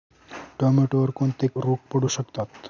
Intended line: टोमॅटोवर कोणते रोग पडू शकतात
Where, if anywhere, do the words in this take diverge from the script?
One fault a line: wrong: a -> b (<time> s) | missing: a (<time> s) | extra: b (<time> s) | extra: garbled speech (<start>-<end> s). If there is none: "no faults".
no faults